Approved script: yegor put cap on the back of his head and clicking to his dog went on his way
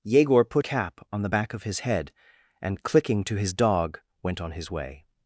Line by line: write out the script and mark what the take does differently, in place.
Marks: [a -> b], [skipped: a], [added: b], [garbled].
yegor put cap on the back of his head and clicking to his dog went on his way